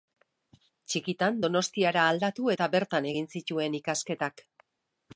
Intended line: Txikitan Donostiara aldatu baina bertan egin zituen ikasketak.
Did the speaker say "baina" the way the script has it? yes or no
no